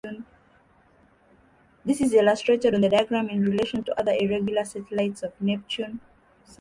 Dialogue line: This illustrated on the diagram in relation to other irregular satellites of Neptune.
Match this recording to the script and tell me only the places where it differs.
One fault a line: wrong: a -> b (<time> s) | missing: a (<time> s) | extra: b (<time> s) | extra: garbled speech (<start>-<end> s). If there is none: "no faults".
extra: is (2.0 s)